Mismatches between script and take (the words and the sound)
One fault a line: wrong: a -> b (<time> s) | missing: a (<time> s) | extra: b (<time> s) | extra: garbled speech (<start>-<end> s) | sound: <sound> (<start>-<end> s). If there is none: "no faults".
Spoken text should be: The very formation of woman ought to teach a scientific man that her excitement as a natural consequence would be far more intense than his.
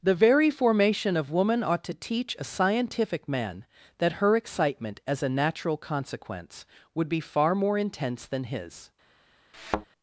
sound: thud (9.5-9.9 s)